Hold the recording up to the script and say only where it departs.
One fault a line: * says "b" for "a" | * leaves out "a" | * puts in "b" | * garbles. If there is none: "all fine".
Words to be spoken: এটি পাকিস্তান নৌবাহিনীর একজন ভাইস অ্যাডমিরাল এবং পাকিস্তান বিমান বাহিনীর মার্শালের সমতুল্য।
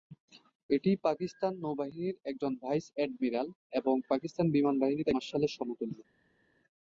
all fine